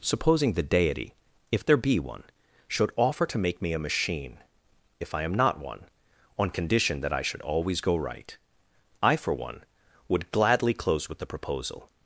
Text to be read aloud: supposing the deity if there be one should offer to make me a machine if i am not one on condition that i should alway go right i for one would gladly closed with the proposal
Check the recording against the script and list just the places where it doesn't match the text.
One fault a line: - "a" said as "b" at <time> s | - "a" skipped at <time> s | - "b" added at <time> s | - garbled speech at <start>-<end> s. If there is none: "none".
- "alway" said as "always" at 7.4 s
- "closed" said as "close" at 10.7 s